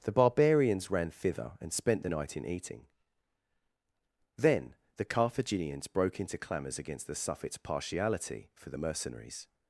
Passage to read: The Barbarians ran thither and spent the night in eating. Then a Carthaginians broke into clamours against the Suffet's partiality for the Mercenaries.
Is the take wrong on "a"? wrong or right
wrong